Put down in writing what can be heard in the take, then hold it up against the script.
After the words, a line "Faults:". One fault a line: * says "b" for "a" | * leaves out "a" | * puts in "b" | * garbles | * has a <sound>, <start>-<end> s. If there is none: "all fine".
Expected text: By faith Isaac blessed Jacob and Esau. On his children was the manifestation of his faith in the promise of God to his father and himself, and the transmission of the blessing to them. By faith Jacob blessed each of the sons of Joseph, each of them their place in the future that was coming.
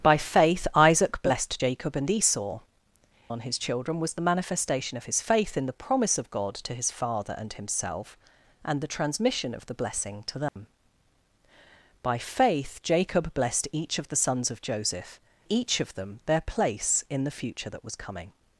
By faith Isaac blessed Jacob and Esau. On his children was the manifestation of his faith in the promise of God to his father and himself, and the transmission of the blessing to them. By faith Jacob blessed each of the sons of Joseph, each of them their place in the future that was coming.
Faults:
* has a dropout, 10.5-10.6 s